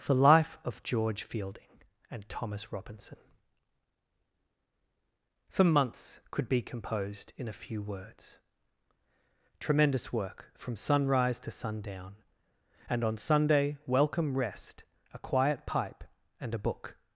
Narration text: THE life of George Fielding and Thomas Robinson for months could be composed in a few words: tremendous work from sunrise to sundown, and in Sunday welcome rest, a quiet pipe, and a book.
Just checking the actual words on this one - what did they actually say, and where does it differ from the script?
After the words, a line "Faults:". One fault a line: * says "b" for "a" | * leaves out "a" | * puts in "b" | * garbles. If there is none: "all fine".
THE life of George Fielding and Thomas Robinson for months could be composed in a few words: tremendous work from sunrise to sundown, and on Sunday welcome rest, a quiet pipe, and a book.
Faults:
* says "on" for "in"